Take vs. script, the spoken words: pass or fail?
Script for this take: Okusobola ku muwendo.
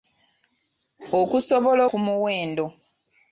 pass